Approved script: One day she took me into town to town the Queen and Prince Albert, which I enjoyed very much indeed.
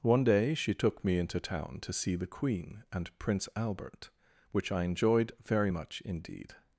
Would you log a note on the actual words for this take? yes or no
yes